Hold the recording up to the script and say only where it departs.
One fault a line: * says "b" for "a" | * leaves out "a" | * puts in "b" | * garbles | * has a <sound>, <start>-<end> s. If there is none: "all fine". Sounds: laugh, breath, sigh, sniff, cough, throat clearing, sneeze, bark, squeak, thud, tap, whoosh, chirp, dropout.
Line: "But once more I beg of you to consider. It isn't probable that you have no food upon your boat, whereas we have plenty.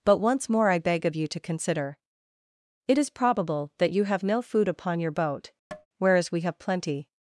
* says "is" for "isn't"
* has a tap, 5.7-5.9 s